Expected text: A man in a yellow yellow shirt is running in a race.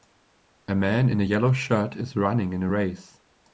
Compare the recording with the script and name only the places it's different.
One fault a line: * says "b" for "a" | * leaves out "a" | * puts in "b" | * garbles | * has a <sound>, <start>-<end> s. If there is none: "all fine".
* leaves out "yellow"